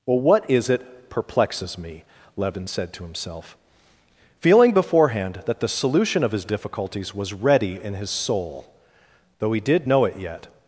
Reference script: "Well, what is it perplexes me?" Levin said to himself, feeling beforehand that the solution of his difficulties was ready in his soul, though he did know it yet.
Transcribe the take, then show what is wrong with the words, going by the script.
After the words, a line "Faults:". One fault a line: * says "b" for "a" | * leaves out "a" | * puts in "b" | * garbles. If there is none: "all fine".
"Well, what is it perplexes me?" Levin said to himself, feeling beforehand that the solution of his difficulties was ready in his soul, though he did know it yet.
Faults:
all fine